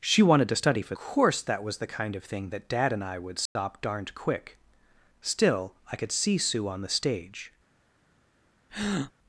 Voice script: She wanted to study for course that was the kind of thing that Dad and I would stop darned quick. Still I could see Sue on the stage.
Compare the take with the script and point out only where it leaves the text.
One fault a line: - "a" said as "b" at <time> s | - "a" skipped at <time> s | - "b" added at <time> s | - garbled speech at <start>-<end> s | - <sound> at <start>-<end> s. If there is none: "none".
- dropout at 3.5-3.6 s
- breath at 8.7-9.1 s